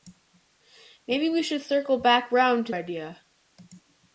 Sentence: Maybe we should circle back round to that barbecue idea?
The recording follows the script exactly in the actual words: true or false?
false